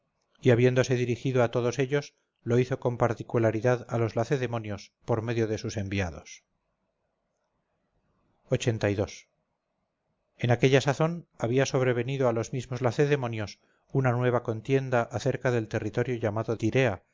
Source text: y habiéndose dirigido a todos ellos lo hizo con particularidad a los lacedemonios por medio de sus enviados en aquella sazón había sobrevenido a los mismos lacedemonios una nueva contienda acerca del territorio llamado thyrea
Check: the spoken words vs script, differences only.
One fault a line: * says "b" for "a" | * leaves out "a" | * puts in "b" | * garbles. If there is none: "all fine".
all fine